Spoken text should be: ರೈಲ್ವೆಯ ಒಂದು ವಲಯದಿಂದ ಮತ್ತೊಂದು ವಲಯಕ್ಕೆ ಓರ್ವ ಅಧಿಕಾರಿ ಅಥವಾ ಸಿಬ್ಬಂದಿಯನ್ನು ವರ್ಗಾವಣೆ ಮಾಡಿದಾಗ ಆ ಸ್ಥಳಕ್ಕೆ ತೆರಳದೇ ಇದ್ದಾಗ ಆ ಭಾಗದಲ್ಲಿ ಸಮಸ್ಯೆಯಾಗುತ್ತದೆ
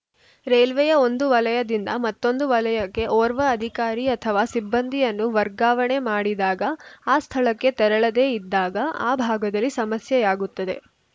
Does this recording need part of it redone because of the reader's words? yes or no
no